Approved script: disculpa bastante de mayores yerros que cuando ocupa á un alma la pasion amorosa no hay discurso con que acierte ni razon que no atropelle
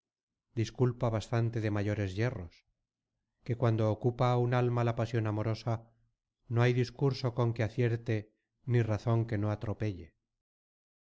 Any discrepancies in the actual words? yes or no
no